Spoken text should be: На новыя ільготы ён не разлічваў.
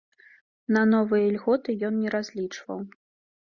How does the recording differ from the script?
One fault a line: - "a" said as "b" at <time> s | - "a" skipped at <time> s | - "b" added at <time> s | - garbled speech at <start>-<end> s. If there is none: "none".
none